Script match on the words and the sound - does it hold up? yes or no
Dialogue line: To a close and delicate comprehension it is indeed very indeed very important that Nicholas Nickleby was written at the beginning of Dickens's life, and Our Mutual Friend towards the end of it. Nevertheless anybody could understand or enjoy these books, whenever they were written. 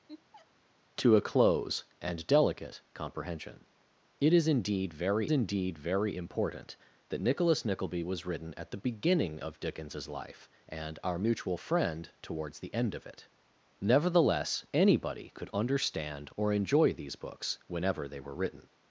no